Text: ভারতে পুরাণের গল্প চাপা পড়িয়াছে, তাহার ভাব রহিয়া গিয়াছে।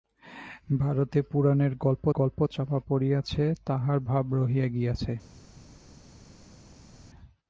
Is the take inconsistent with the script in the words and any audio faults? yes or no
yes